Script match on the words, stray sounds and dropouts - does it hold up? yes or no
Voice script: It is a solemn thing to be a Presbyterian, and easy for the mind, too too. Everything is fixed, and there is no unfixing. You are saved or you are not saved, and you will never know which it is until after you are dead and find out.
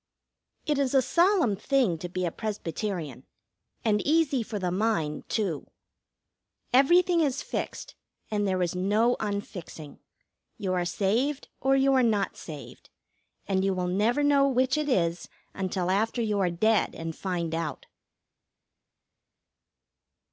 no